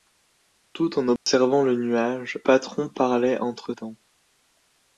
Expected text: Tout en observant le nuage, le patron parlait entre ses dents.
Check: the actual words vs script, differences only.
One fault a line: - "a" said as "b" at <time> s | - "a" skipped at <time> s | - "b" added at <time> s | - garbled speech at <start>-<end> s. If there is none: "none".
- "le" skipped at 2.4 s
- "ses" skipped at 3.7 s